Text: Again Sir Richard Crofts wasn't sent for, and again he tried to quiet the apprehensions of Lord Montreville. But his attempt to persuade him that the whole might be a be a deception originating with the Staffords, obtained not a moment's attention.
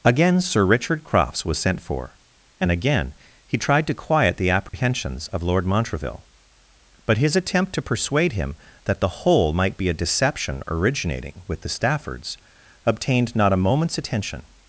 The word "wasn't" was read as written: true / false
false